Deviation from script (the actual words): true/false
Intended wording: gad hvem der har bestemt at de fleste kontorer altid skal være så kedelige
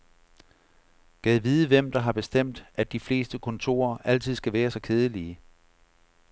true